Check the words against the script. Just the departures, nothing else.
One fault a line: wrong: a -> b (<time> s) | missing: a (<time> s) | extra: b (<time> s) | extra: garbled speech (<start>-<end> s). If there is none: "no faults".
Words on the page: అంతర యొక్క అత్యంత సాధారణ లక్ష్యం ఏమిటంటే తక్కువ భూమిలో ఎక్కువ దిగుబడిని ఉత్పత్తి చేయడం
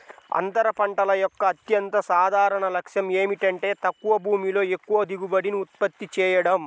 extra: పంటల (0.7 s)